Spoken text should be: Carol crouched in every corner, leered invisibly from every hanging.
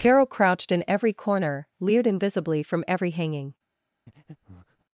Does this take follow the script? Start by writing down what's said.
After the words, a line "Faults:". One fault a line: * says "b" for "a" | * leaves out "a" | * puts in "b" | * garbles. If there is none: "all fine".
Carol crouched in every corner, leered invisibly from every hanging.
Faults:
all fine